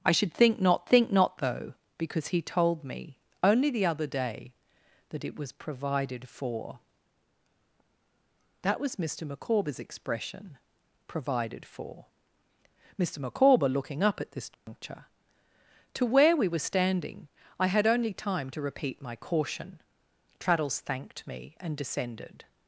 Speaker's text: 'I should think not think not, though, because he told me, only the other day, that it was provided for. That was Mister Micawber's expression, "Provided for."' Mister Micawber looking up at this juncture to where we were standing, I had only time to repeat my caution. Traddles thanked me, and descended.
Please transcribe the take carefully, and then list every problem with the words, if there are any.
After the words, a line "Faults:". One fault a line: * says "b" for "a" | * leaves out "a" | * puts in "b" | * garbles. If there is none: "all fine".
'I should think not think not, though, because he told me, only the other day, that it was provided for. That was Mister Micawber's expression, "Provided for."' Mister Micawber looking up at this juncture to where we were standing, I had only time to repeat my caution. Traddles thanked me, and descended.
Faults:
all fine